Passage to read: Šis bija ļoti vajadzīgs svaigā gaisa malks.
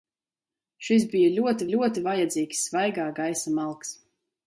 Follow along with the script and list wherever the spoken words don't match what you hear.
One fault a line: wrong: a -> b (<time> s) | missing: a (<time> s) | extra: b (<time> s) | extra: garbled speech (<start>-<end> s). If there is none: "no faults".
extra: ļoti (1.7 s)